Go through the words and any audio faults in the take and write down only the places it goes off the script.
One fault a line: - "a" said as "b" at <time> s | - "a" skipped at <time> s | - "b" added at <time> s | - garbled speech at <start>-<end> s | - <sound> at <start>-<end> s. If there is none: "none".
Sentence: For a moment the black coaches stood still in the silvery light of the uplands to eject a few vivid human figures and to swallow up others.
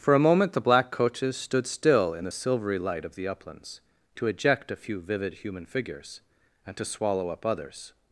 none